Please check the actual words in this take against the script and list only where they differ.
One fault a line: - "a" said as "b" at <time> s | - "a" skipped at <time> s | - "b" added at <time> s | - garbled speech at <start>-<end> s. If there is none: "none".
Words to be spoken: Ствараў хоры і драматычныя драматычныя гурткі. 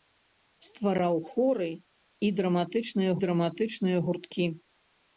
none